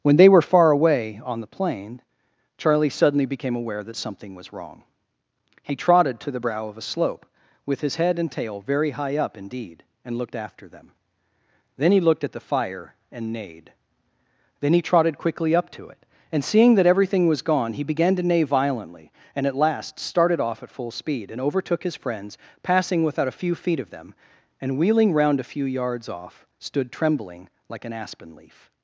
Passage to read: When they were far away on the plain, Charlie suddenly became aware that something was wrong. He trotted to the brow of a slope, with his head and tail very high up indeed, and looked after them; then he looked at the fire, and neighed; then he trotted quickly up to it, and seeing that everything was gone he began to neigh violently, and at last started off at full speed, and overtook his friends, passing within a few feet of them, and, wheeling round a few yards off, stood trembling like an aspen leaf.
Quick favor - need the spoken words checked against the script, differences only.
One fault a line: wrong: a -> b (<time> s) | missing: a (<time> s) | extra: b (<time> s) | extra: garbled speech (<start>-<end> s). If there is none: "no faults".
wrong: within -> without (23.0 s)